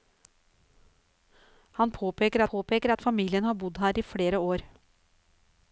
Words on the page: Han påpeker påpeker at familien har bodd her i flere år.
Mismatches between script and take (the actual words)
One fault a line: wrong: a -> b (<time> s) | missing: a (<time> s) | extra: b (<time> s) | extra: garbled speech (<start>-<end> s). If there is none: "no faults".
no faults